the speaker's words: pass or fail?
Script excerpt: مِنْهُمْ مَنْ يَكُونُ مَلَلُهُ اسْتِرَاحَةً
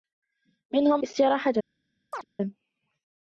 fail